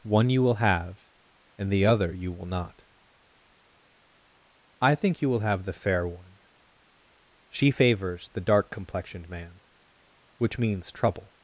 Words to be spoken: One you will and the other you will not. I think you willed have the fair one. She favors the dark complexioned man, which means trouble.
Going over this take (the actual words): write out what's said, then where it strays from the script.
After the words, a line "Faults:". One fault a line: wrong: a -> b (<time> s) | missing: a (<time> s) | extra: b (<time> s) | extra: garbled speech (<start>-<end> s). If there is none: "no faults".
One you will have, and the other you will not. I think you will have the fair one. She favors the dark complexioned man, which means trouble.
Faults:
extra: have (0.6 s)
wrong: willed -> will (5.3 s)